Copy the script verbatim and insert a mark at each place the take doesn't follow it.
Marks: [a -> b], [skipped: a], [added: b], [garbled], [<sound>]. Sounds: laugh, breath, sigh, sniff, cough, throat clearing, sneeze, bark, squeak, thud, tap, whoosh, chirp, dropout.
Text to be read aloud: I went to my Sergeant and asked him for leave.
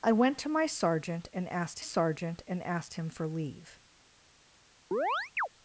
I went to my Sergeant and asked [added: Sergeant and asked] him for leave. [chirp]